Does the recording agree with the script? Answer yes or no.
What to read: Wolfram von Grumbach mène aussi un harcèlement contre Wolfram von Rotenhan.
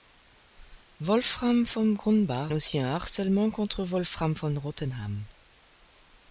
no